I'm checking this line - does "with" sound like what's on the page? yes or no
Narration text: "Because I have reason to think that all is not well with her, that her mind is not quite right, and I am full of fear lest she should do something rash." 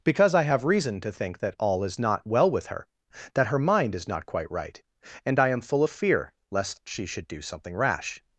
yes